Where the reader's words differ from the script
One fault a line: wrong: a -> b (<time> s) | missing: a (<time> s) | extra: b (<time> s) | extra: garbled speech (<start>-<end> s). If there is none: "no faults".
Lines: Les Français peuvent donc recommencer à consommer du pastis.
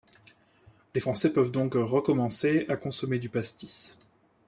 no faults